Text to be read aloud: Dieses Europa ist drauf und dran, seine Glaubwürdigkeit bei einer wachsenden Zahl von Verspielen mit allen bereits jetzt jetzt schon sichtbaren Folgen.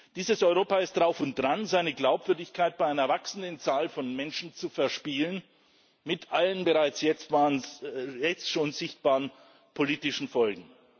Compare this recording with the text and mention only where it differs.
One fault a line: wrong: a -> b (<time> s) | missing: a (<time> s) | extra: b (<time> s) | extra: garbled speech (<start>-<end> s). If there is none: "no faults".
extra: Menschen zu (4.2 s)
missing: jetzt (7.3 s)
extra: politischen (9.7 s)